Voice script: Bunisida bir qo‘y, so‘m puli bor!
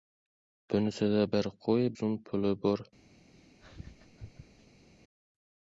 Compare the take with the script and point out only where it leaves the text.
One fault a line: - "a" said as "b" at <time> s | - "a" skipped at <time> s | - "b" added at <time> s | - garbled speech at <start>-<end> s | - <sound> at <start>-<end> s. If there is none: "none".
- laugh at 3.3-4.9 s